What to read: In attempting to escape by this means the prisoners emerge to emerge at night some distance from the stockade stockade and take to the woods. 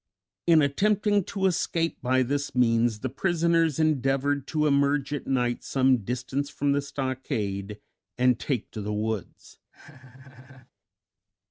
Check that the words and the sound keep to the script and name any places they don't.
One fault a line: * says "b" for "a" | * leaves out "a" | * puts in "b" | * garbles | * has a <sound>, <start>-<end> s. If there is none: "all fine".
* says "endeavored" for "emerge"
* leaves out "stockade"
* has a laugh, 9.7-10.7 s